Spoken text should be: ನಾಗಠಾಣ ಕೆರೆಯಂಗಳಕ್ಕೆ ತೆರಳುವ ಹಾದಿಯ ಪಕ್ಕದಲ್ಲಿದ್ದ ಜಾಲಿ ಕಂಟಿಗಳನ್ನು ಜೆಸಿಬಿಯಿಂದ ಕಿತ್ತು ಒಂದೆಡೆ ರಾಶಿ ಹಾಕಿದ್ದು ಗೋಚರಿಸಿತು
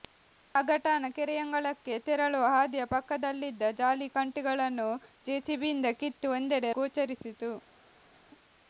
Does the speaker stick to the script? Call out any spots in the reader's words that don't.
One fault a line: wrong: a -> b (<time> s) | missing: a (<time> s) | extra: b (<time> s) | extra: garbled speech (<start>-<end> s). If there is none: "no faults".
missing: ರಾಶಿ ಹಾಕಿದ್ದು (6.7 s)